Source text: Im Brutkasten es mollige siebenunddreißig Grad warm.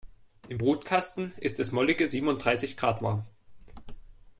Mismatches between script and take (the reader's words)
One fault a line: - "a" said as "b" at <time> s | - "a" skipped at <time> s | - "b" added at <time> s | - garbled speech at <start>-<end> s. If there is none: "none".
- "ist" added at 1.4 s